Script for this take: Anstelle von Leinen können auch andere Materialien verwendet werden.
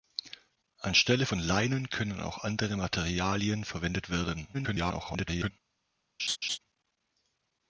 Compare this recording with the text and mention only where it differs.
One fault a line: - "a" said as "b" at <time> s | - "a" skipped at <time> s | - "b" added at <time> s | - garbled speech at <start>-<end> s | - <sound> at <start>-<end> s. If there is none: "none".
- garbled speech at 4.5-5.5 s
- laugh at 6.2-6.6 s